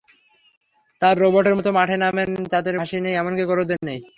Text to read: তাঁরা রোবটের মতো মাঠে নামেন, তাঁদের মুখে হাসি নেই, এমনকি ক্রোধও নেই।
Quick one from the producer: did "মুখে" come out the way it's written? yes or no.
no